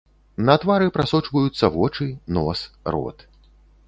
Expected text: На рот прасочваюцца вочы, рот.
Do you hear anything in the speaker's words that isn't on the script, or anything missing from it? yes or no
yes